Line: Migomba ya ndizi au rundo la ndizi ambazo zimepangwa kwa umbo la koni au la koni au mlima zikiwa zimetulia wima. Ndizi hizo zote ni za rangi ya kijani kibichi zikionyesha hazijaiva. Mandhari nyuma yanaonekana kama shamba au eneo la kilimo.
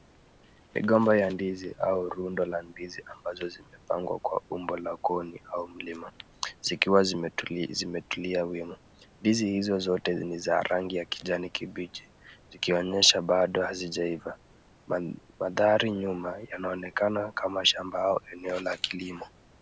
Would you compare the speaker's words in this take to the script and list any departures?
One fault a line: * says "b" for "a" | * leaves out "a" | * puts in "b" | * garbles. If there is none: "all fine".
* leaves out "la koni au"
* puts in "bado"